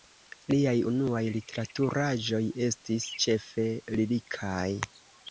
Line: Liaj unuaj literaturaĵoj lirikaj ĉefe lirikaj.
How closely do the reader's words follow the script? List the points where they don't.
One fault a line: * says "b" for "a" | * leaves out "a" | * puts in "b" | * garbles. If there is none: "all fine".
* says "estis" for "lirikaj"